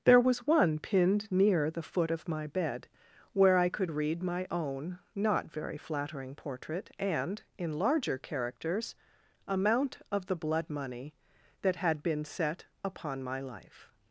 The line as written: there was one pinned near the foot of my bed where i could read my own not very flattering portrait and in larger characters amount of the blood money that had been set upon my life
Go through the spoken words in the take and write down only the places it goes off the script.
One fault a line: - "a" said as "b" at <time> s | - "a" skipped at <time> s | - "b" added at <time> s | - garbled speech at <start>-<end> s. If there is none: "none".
none